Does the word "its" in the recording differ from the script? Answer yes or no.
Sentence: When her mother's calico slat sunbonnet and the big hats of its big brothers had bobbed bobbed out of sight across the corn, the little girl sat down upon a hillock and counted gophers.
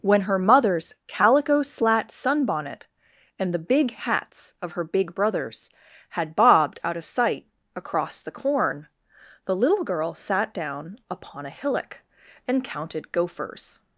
yes